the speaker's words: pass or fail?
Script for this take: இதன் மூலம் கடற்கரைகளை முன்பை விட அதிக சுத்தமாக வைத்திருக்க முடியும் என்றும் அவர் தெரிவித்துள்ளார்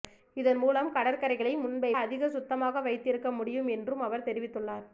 fail